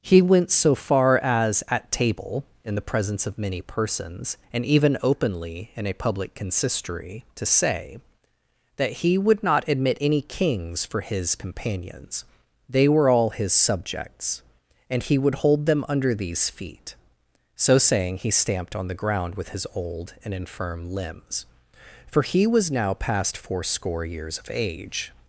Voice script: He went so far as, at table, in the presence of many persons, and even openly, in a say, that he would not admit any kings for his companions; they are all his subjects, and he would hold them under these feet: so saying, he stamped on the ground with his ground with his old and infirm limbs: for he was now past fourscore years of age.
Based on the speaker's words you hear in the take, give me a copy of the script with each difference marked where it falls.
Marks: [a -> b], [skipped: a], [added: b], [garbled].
He went so far as, at table, in the presence of many persons, and even openly, in a [added: public consistory to] say, that he would not admit any kings for his companions; they [are -> were] all his subjects, and he would hold them under these feet: so saying, he stamped on the ground with his [skipped: ground with his] old and infirm limbs: for he was now past fourscore years of age.